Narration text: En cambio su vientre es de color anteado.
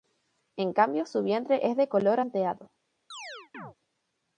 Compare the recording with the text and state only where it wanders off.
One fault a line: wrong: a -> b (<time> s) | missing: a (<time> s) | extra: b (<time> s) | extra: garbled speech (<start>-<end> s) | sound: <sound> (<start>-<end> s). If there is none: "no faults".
sound: chirp (3.1-3.7 s)